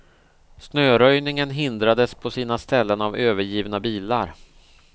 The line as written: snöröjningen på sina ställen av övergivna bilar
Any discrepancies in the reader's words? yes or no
yes